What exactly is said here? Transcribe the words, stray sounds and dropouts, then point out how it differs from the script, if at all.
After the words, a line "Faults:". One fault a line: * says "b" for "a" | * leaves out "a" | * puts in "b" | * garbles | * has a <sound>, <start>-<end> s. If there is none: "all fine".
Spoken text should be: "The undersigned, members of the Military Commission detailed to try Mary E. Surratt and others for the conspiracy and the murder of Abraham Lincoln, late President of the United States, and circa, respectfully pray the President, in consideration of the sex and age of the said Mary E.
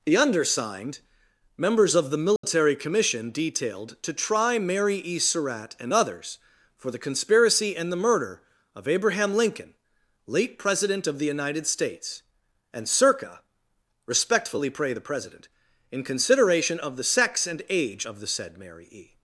"The undersigned, members of the Military Commission detailed to try Mary E. Surratt and others for the conspiracy and the murder of Abraham Lincoln, late President of the United States, and circa, respectfully pray the President, in consideration of the sex and age of the said Mary E.
Faults:
* has a dropout, 2.4-2.4 s